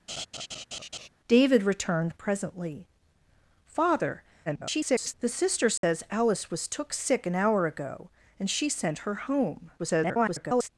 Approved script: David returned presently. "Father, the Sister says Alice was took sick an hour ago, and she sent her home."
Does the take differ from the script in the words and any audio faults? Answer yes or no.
yes